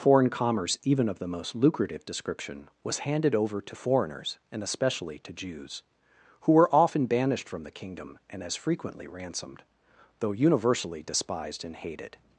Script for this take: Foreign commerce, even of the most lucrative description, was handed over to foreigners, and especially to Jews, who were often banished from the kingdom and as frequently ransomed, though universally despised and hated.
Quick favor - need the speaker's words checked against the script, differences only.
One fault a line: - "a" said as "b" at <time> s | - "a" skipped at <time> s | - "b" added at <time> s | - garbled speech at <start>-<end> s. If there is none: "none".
none